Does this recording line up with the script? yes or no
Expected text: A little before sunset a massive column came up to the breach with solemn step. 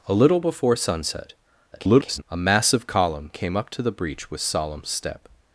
no